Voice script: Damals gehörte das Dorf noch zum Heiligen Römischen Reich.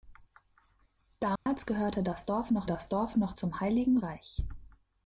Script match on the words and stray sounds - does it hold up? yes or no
no